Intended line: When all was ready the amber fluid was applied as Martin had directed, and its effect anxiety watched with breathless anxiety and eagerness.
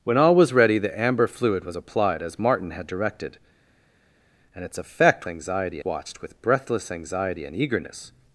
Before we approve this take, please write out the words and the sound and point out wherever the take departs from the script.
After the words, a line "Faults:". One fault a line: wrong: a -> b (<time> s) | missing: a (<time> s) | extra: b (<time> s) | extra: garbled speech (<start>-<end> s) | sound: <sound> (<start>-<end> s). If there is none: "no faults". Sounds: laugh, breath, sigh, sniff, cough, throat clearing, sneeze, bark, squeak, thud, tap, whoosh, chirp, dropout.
When all was ready the amber fluid was applied as Martin had directed, and its effect anxiety watched with breathless anxiety and eagerness.
Faults:
no faults